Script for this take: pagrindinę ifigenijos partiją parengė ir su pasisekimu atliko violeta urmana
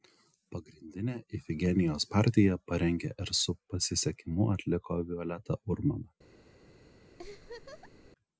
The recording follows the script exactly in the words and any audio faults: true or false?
false